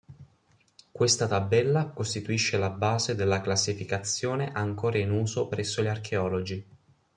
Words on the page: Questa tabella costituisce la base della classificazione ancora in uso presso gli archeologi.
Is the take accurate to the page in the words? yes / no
yes